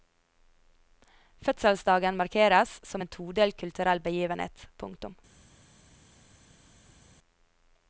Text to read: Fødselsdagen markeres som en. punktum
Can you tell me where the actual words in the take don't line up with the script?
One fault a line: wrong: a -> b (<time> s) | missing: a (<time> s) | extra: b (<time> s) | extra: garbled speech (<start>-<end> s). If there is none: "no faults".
extra: todelt kulturell begivenhet (3.2 s)